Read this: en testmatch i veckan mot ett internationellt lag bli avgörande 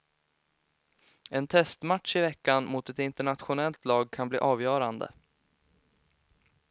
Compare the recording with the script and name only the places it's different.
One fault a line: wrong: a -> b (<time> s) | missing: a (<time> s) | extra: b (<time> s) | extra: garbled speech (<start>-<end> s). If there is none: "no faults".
extra: kan (4.1 s)